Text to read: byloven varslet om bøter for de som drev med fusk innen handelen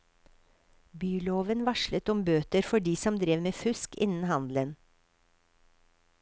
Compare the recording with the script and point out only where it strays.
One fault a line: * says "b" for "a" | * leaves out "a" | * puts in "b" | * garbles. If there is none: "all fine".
all fine